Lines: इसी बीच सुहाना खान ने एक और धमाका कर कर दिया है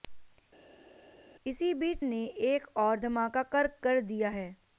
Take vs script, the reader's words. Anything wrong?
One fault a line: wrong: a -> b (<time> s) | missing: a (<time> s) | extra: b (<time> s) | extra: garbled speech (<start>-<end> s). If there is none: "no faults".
missing: सुहाना खान (2.0 s)